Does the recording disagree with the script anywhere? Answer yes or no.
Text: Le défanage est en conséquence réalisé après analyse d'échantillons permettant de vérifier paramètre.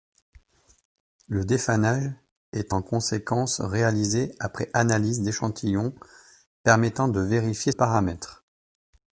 no